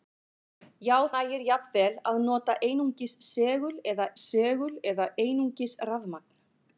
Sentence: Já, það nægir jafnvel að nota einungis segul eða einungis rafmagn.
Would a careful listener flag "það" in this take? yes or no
yes